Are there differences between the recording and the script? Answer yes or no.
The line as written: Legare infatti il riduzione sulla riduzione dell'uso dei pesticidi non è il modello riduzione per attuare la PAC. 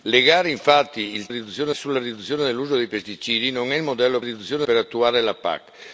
no